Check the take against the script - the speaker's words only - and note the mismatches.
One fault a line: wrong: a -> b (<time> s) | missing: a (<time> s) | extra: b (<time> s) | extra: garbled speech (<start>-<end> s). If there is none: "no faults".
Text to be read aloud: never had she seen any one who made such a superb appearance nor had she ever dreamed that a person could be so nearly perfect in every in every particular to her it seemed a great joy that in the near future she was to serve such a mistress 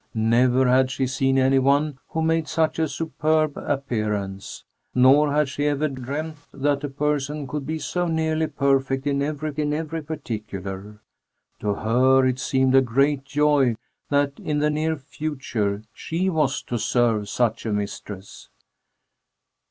no faults